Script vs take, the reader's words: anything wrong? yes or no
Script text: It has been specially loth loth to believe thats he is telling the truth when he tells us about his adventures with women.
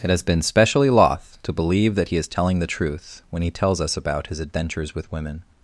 yes